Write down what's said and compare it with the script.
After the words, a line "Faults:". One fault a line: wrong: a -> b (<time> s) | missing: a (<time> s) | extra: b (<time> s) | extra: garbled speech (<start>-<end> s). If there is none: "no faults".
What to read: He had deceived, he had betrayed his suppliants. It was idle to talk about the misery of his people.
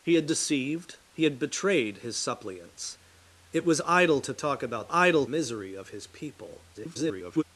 He had deceived, he had betrayed his suppliants. It was idle to talk about idle misery of his people. [garbled]
Faults:
wrong: the -> idle (4.9 s)
extra: garbled speech (6.7-7.4 s)